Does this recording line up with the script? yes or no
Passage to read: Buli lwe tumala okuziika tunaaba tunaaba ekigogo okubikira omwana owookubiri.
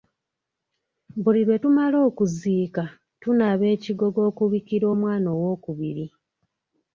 no